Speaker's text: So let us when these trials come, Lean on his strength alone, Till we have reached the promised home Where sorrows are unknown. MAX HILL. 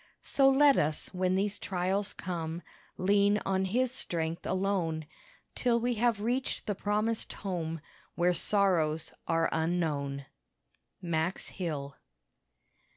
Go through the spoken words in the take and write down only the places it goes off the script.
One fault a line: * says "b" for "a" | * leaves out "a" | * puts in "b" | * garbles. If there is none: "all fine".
all fine